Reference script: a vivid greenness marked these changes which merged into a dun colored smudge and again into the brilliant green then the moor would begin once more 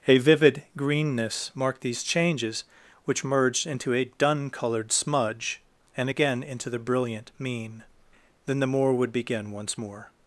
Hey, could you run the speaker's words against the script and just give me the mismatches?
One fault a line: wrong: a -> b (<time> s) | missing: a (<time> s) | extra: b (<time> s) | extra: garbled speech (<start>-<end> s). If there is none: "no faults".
wrong: green -> mean (7.4 s)